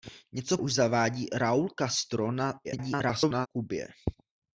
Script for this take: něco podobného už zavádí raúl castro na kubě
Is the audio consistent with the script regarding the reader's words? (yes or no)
no